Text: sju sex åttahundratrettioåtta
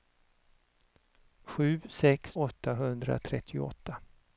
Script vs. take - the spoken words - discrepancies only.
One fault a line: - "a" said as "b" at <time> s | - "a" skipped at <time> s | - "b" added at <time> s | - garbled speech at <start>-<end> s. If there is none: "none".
none